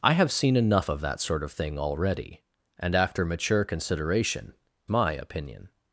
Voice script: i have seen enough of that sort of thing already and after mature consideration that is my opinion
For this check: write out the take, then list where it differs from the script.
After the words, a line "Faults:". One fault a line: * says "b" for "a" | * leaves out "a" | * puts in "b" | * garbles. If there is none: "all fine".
i have seen enough of that sort of thing already and after mature consideration my opinion
Faults:
* leaves out "that is"